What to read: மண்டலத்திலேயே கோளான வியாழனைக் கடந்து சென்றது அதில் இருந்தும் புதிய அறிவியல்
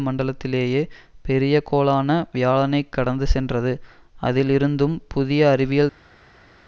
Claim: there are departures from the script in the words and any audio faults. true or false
true